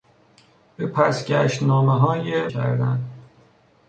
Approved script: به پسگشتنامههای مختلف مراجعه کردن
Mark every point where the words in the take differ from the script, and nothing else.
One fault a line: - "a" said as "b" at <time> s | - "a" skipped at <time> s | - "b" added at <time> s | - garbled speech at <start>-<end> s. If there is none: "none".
- "مختلف مراجعه" skipped at 2.5 s